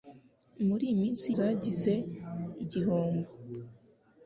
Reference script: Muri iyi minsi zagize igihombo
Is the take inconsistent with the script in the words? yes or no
no